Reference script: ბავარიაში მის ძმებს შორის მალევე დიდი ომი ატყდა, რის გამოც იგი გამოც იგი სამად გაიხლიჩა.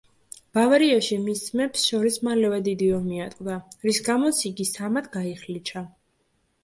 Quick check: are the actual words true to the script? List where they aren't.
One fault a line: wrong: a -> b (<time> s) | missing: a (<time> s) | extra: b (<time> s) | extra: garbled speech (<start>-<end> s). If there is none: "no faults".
missing: გამოც იგი (4.7 s)